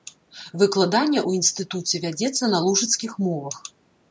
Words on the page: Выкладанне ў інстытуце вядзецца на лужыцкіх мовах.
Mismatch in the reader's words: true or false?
false